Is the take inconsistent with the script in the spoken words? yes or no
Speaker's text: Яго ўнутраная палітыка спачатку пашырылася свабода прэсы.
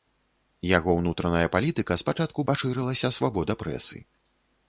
no